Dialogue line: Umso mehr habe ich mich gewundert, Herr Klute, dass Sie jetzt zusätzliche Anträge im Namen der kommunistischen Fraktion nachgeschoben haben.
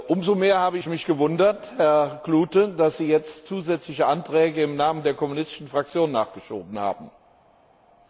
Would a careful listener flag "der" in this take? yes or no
no